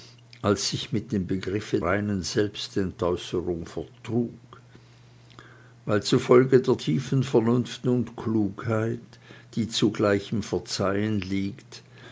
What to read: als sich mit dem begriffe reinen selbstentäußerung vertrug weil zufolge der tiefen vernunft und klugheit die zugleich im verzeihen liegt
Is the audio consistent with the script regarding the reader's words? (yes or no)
yes